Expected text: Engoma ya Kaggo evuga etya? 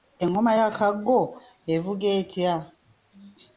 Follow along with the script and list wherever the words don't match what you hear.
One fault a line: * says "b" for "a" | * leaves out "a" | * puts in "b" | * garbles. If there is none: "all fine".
all fine